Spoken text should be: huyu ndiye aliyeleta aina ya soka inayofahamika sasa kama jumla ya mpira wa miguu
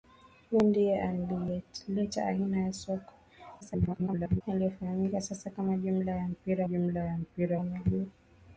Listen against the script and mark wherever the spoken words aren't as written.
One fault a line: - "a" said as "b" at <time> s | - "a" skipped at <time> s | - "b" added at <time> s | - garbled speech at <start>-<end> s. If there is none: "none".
- garbled speech at 3.6-4.4 s
- "jumla ya mpira" added at 6.6 s